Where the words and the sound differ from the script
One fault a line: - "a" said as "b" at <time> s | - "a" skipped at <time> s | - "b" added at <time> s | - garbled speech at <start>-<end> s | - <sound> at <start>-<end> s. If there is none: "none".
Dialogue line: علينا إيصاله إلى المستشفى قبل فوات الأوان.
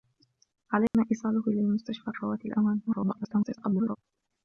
- dropout at 0.9-0.9 s
- "قبل" skipped at 2.1 s
- garbled speech at 2.9-4.0 s